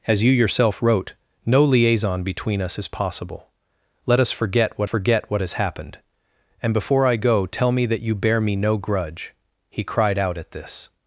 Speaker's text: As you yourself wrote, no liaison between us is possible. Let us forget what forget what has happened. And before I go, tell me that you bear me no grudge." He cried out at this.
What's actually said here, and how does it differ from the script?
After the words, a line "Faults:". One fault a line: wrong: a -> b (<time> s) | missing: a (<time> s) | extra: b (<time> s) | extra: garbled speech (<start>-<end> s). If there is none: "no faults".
As you yourself wrote, no liaison between us is possible. Let us forget what forget what has happened. And before I go, tell me that you bear me no grudge." He cried out at this.
Faults:
no faults